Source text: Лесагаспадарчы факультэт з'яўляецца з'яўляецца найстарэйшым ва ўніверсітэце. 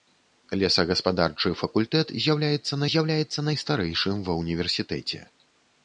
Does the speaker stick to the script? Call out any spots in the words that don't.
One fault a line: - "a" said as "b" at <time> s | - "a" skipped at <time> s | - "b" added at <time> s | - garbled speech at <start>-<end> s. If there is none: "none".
none